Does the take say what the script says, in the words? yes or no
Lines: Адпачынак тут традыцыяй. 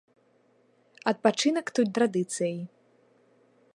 yes